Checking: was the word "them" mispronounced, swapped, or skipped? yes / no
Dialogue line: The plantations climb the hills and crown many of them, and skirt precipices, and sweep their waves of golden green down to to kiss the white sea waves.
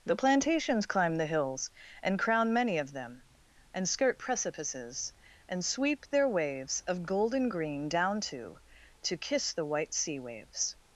no